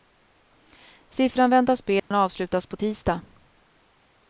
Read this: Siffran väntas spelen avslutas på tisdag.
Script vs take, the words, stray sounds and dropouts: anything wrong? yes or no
yes